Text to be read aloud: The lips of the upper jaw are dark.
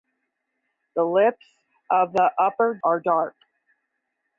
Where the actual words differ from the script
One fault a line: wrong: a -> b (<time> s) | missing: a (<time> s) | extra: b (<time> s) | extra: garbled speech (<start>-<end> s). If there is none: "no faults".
missing: jaw (2.8 s)